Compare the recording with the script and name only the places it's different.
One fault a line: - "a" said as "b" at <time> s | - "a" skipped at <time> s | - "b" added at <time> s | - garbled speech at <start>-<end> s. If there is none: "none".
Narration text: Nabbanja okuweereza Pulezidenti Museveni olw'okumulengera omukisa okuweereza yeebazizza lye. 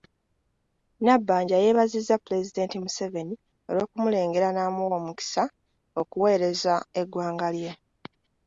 - "okuweereza" said as "yeebazizza" at 1.6 s
- "n'amuwa" added at 4.5 s
- "yeebazizza" said as "eggwanga" at 7.0 s